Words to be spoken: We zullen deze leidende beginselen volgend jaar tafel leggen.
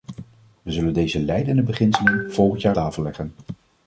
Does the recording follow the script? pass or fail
pass